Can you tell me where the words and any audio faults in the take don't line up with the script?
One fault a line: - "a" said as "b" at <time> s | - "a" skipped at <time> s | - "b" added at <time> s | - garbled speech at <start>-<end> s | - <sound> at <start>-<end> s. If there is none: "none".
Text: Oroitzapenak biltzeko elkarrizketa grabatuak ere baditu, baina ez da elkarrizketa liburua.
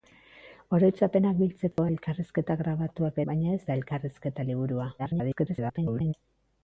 - dropout at 1.7-1.8 s
- "ere baditu" skipped at 3.2 s
- garbled speech at 5.0-6.1 s